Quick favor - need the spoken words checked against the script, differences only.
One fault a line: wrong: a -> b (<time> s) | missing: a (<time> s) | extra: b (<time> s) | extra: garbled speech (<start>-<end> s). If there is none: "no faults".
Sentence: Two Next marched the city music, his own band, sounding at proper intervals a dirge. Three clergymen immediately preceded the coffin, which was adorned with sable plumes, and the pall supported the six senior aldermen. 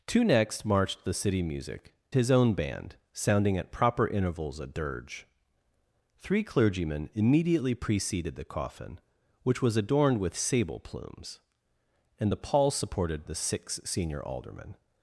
no faults